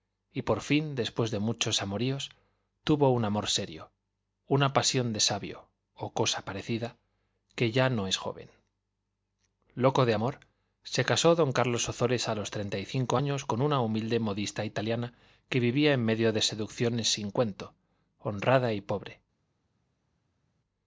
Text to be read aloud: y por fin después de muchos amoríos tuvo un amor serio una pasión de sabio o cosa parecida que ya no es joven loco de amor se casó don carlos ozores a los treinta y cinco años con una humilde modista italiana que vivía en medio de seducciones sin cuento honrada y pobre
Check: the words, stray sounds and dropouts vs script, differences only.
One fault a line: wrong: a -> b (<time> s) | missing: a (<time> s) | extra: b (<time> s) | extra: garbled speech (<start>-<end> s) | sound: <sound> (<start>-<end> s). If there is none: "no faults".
no faults